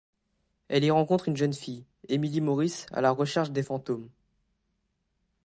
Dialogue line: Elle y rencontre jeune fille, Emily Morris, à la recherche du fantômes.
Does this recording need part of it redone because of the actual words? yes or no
yes